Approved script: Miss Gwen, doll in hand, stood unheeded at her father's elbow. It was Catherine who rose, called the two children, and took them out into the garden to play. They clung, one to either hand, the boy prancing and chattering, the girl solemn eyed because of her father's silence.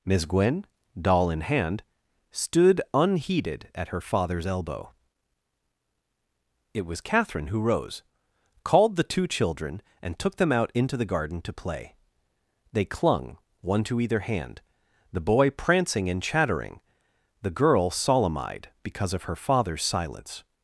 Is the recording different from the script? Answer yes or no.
no